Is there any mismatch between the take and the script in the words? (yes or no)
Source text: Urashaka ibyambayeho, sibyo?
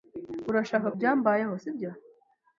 no